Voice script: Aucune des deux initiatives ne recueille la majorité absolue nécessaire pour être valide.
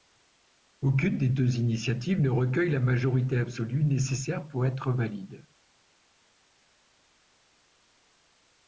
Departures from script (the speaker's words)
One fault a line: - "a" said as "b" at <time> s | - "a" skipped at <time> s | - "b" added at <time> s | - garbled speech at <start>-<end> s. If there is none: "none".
none